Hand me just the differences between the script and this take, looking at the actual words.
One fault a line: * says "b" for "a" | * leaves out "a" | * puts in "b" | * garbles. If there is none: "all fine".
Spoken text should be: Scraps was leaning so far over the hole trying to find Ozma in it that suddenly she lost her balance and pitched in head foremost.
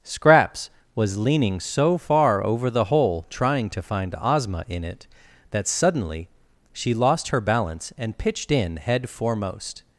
all fine